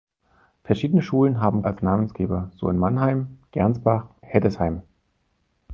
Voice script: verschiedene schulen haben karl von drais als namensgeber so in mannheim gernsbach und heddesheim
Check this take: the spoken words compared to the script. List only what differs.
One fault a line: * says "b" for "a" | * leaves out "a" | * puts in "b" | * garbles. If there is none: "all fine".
* leaves out "karl von drais"
* leaves out "und"